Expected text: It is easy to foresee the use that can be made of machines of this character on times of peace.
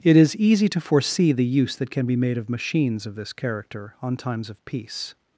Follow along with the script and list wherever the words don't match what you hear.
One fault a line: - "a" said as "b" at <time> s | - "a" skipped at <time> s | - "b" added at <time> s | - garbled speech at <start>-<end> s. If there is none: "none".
none